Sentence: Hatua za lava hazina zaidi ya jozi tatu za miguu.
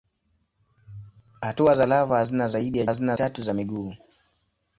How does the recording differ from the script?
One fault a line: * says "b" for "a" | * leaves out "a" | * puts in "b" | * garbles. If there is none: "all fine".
* says "hazina" for "jozi"